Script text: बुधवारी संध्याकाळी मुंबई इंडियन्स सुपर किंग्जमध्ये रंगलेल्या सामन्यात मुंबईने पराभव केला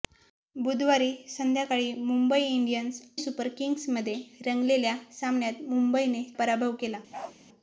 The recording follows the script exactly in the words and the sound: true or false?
false